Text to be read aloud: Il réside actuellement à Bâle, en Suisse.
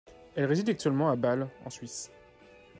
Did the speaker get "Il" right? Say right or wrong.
wrong